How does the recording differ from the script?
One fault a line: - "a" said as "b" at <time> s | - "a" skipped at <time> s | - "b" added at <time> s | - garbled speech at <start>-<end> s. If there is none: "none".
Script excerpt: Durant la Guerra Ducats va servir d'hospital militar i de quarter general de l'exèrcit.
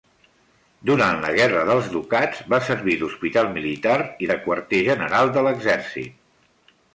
- "dels" added at 1.7 s